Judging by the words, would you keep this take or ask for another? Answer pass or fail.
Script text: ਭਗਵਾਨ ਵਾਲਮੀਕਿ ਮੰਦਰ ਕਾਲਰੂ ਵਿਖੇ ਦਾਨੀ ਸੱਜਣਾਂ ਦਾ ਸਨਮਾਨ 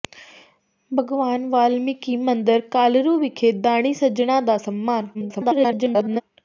fail